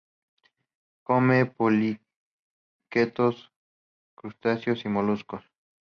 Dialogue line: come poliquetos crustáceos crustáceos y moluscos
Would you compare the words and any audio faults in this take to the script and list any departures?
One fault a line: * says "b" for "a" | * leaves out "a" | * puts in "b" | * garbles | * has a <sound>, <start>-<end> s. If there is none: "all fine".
* leaves out "crustáceos"